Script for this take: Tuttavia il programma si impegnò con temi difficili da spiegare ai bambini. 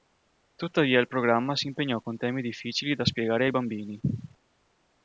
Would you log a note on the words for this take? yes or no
no